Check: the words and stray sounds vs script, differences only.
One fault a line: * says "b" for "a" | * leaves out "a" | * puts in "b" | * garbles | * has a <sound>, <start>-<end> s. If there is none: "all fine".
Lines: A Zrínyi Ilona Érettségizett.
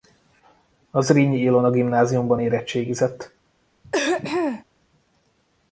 * puts in "Gimnáziumban"
* has a throat clearing, 3.8-4.6 s